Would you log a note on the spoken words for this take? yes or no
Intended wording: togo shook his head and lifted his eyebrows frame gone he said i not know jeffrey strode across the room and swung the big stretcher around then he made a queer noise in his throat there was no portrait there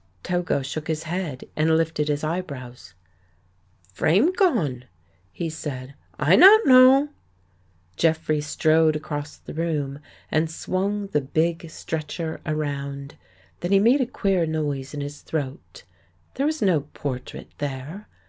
no